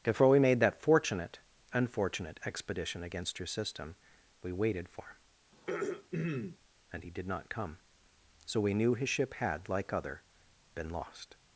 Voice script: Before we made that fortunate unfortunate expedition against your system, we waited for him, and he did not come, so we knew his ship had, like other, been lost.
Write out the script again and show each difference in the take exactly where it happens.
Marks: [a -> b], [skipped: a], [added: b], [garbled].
Before we made that fortunate unfortunate expedition against your system, we waited for him, and he did not come, so we knew his ship had, like other, been lost.